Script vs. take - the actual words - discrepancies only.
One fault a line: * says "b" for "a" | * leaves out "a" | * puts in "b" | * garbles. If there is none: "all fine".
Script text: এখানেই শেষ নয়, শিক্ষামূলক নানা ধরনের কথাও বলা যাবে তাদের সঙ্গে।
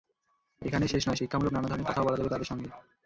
all fine